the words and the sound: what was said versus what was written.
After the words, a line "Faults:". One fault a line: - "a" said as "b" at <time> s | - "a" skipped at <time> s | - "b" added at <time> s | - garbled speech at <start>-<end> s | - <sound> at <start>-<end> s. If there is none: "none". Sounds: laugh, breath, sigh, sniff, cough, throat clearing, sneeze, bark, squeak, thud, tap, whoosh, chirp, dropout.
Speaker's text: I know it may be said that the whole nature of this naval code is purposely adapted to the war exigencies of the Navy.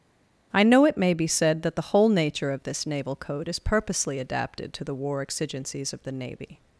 I know it may be said that the whole nature of this naval code is purposely adapted to the war exigencies of the Navy.
Faults:
none